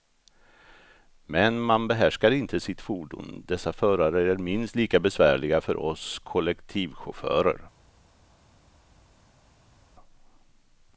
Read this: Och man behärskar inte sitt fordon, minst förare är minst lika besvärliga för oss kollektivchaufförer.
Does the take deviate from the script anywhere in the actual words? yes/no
yes